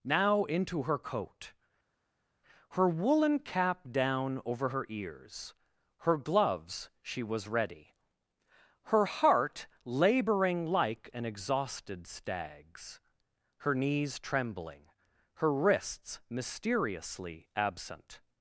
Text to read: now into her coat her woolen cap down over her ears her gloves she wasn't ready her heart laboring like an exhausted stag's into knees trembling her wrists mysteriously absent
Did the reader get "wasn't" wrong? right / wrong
wrong